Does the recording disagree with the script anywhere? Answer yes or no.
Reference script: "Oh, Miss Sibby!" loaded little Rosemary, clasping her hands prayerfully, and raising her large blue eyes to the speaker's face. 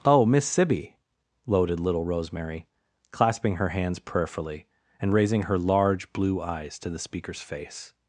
no